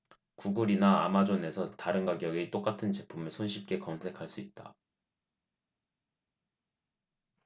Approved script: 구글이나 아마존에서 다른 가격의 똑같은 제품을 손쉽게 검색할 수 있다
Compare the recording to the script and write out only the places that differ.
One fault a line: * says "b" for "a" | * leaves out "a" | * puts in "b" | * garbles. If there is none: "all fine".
all fine